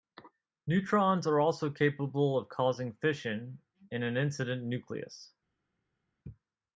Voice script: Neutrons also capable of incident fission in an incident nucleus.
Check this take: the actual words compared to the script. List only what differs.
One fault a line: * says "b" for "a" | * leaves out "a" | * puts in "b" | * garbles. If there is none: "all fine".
* puts in "are"
* says "causing" for "incident"